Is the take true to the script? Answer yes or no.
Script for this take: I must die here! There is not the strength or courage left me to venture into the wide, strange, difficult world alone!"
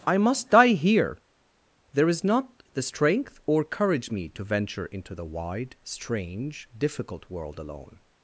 no